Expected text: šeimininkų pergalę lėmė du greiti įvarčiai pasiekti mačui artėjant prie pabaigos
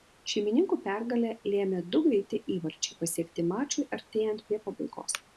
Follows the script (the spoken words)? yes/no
yes